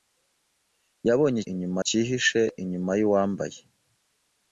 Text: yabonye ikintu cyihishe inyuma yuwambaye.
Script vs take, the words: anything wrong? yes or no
yes